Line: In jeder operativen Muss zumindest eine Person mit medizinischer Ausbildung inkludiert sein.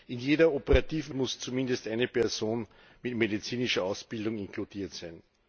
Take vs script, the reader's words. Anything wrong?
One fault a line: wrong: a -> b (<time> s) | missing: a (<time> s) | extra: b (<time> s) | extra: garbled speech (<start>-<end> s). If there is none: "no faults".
no faults